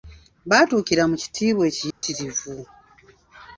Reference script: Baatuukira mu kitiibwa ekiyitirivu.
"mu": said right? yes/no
yes